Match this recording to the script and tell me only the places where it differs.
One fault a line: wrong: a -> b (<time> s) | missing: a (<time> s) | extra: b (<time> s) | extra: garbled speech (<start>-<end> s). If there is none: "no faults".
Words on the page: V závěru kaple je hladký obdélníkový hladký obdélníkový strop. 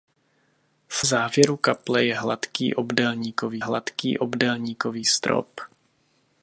no faults